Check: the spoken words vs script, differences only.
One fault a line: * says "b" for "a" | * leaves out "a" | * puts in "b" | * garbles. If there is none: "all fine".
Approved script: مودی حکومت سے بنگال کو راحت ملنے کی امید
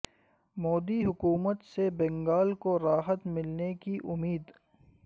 all fine